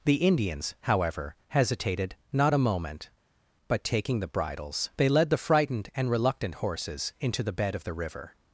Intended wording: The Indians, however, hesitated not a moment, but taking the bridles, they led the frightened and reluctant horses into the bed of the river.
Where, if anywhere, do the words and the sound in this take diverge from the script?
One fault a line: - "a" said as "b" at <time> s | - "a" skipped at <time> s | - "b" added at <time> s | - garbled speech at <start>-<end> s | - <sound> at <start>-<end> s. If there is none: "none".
none